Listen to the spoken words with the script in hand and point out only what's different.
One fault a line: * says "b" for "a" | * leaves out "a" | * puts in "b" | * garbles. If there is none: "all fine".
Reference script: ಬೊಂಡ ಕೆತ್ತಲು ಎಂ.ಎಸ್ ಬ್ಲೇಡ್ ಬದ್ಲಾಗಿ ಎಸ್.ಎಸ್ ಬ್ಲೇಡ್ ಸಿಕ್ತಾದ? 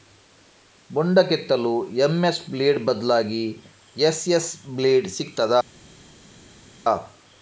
all fine